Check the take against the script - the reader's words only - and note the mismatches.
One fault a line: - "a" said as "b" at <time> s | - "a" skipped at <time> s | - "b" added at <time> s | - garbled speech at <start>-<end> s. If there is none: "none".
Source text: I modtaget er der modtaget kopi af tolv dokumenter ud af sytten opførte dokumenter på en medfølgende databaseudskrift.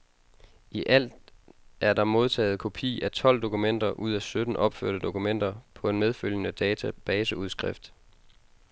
- "modtaget" said as "alt" at 0.9 s